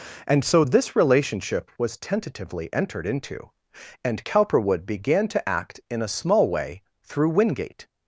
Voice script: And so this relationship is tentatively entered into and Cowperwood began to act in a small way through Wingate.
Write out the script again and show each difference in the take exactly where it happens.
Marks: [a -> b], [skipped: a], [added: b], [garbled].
And so this relationship [is -> was] tentatively entered into and Cowperwood began to act in a small way through Wingate.